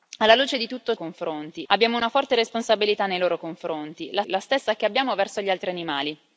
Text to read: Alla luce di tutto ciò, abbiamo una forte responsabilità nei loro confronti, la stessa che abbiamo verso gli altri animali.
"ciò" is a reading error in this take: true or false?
true